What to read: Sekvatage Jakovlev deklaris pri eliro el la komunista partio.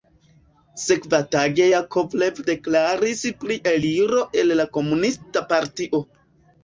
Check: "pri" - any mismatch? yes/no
no